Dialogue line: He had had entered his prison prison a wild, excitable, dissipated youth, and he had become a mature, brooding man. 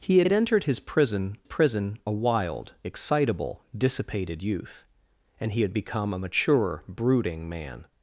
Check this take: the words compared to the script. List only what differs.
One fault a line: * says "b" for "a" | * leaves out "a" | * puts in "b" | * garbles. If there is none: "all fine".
all fine